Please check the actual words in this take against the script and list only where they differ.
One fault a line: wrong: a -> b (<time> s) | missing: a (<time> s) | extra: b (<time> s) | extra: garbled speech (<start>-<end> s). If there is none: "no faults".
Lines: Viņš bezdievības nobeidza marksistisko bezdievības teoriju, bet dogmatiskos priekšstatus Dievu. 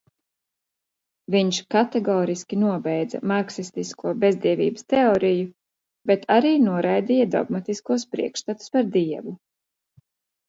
wrong: bezdievības -> kategoriski (1.7 s)
extra: arī noraidīja (6.4 s)
extra: par (8.8 s)